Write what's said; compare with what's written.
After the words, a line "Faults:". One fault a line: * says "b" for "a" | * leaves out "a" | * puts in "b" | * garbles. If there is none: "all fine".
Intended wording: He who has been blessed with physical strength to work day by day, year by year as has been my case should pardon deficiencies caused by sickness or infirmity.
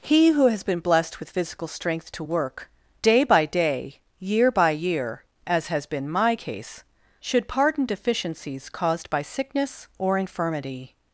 He who has been blessed with physical strength to work day by day, year by year as has been my case should pardon deficiencies caused by sickness or infirmity.
Faults:
all fine